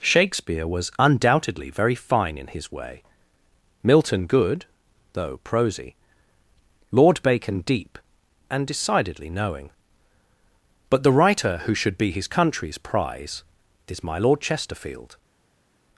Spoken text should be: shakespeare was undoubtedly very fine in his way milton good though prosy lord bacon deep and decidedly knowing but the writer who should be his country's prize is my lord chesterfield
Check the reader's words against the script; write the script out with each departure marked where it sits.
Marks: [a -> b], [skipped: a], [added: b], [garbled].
shakespeare was undoubtedly very fine in his way milton good though prosy lord bacon deep and decidedly knowing but the writer who should be his country's prize is my lord chesterfield